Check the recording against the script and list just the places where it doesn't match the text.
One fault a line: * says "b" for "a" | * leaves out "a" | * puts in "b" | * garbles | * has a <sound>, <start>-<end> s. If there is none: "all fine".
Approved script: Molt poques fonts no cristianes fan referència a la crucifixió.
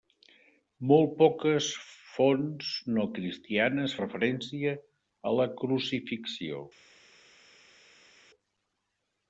* leaves out "fan"